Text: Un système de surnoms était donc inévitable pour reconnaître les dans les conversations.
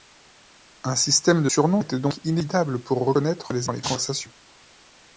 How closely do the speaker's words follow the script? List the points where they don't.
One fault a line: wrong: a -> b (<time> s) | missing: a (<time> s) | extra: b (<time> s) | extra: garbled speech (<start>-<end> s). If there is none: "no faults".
no faults